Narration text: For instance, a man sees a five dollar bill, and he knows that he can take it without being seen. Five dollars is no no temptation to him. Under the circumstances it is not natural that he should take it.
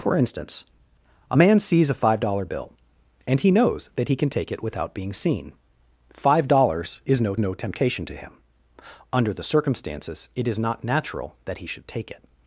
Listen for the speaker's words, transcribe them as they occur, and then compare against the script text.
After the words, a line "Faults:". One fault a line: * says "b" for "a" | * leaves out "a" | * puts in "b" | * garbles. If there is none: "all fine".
For instance, a man sees a five dollar bill, and he knows that he can take it without being seen. Five dollars is no no temptation to him. Under the circumstances it is not natural that he should take it.
Faults:
all fine